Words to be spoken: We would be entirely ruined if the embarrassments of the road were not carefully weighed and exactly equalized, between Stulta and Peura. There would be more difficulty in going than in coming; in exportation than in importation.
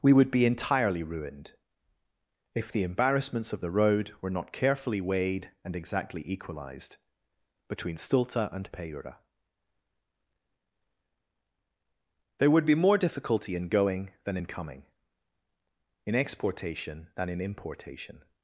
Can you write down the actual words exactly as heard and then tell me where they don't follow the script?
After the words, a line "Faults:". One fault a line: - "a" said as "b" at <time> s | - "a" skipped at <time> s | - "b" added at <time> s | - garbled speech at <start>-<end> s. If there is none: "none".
We would be entirely ruined if the embarrassments of the road were not carefully weighed and exactly equalized, between Stulta and Peura. There would be more difficulty in going than in coming; in exportation than in importation.
Faults:
none